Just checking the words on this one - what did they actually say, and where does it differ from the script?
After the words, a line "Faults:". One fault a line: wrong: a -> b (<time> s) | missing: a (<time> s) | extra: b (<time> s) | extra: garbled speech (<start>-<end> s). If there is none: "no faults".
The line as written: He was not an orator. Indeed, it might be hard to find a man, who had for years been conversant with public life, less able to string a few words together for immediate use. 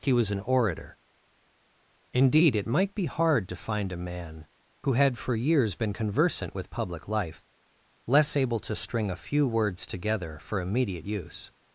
He was an orator. Indeed, it might be hard to find a man, who had for years been conversant with public life, less able to string a few words together for immediate use.
Faults:
missing: not (0.3 s)